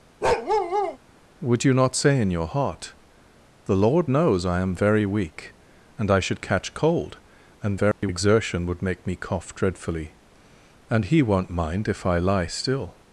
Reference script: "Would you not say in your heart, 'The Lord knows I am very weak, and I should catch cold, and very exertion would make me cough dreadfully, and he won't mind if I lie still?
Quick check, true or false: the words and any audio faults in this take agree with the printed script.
false